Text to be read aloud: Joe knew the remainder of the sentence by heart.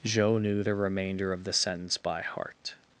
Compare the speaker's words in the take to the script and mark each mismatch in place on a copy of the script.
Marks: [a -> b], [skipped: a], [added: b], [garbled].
Joe knew the remainder of the sentence by heart.